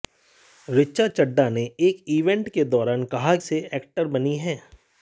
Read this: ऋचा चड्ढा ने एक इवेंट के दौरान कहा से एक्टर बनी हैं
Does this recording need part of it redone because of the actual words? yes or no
no